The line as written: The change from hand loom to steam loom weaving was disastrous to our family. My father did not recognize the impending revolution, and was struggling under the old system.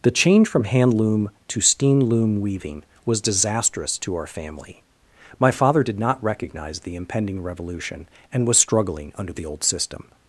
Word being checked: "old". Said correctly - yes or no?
yes